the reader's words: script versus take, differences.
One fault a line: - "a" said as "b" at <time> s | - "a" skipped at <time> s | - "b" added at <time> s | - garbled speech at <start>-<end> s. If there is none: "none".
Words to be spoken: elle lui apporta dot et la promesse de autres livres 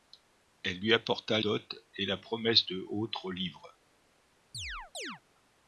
none